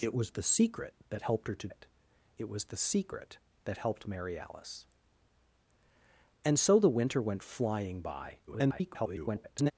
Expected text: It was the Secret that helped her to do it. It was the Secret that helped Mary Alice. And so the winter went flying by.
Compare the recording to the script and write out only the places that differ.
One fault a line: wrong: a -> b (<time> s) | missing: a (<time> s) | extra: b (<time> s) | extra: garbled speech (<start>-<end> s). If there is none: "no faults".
missing: do (1.7 s)
extra: garbled speech (8.5-9.7 s)